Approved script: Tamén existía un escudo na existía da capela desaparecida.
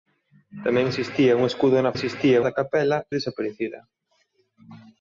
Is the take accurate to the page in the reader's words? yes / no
yes